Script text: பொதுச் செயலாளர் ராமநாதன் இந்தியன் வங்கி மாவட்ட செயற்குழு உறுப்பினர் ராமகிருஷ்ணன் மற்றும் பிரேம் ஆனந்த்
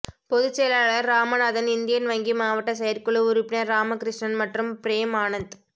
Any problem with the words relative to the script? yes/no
no